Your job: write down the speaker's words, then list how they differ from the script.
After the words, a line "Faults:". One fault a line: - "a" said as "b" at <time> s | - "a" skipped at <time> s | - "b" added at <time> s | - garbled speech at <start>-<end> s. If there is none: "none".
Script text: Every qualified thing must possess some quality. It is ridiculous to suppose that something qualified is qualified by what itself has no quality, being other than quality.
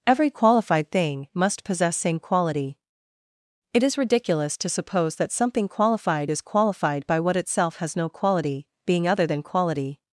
Every qualified thing must possess same quality. It is ridiculous to suppose that something qualified is qualified by what itself has no quality, being other than quality.
Faults:
- "some" said as "same" at 1.9 s